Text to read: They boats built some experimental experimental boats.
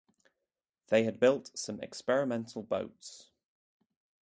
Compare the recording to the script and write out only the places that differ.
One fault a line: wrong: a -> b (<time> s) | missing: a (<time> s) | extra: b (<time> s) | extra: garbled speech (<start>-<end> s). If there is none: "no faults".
wrong: boats -> had (1.0 s)
missing: experimental (2.6 s)